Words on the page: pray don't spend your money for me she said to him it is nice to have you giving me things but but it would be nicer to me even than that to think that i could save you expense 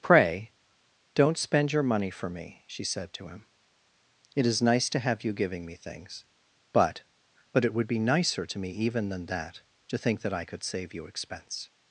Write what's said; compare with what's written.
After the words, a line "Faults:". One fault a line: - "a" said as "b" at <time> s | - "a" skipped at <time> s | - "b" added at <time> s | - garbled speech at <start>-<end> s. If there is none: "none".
pray don't spend your money for me she said to him it is nice to have you giving me things but but it would be nicer to me even than that to think that i could save you expense
Faults:
none